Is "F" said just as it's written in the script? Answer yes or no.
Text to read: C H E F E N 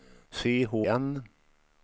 no